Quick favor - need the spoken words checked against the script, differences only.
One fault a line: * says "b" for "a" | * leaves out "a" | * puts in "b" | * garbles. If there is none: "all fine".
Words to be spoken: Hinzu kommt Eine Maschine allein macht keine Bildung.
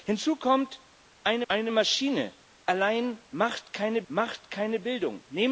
* puts in "Eine"
* puts in "macht keine"